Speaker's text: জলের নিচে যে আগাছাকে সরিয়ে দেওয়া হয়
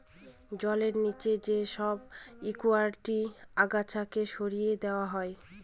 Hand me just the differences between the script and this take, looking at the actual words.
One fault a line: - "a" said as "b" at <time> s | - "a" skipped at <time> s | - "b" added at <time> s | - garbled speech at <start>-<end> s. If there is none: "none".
- "সব একুয়াটিক" added at 1.8 s